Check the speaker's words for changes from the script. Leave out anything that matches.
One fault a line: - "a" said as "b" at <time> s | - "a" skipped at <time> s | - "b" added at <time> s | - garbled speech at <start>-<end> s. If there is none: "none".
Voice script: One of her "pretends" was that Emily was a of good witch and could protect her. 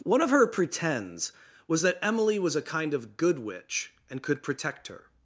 - "kind" added at 2.6 s